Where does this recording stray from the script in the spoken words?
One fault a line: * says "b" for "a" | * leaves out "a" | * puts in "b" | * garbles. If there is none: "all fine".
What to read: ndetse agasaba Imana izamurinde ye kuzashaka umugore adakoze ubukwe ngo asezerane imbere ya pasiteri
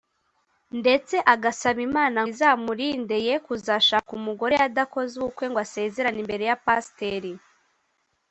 all fine